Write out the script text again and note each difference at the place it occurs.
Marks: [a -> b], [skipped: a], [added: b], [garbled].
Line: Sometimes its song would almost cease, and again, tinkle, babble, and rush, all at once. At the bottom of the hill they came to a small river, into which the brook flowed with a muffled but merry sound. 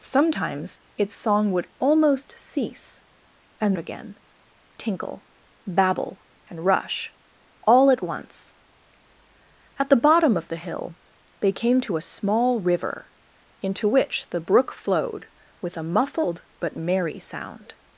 Sometimes its song would almost cease, and again, tinkle, babble, and rush, all at once. At the bottom of the hill they came to a small river, into which the brook flowed with a muffled but merry sound.